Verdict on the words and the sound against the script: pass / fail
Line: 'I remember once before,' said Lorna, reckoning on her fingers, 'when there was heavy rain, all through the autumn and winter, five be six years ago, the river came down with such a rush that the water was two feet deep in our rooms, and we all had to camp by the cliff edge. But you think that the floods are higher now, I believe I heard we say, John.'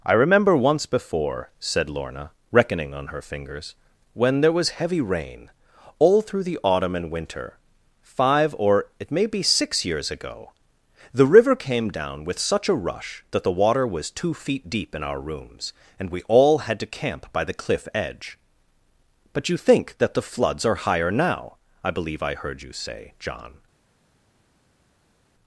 fail